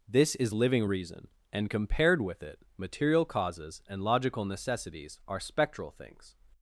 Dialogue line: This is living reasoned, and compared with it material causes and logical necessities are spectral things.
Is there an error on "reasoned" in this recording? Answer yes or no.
yes